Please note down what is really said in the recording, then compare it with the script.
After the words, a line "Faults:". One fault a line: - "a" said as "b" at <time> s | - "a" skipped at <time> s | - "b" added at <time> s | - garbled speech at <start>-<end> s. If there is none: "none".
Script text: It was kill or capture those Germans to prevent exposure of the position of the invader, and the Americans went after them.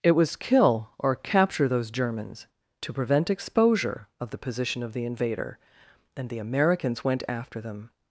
It was kill or capture those Germans to prevent exposure of the position of the invader, and the Americans went after them.
Faults:
none